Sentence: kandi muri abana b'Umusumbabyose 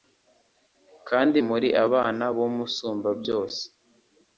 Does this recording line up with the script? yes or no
yes